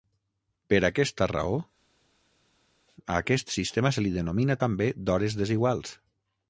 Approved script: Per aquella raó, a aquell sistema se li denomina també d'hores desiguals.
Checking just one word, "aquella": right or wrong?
wrong